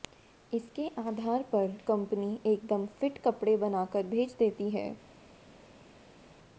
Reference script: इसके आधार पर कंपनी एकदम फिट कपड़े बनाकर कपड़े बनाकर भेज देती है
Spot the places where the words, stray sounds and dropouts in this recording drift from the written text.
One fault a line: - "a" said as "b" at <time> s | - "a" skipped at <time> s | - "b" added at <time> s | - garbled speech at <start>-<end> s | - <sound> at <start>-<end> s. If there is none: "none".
- "कपड़े बनाकर" skipped at 4.1 s